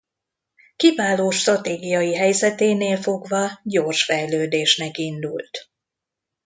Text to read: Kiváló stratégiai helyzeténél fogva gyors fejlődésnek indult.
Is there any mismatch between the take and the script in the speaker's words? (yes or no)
no